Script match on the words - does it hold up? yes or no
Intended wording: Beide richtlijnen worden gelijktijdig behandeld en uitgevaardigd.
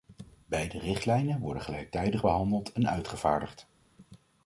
yes